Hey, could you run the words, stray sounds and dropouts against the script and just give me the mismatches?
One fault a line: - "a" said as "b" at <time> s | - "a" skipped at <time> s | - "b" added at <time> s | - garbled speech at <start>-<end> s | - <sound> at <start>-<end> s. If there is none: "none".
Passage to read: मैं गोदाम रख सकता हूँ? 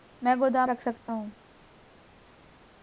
none